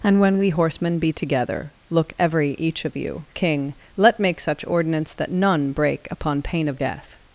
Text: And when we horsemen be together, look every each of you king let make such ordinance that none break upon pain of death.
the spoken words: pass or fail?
pass